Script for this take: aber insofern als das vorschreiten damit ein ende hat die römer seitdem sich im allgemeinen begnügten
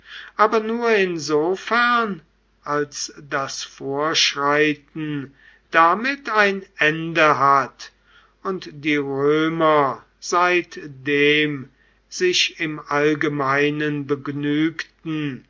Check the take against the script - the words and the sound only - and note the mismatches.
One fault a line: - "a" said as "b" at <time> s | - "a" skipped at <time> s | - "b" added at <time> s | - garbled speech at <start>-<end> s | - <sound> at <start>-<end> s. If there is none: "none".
- "nur" added at 0.6 s
- "und" added at 8.4 s